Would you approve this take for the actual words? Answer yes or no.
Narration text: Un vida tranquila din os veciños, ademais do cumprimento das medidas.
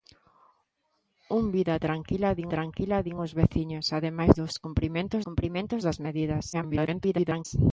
no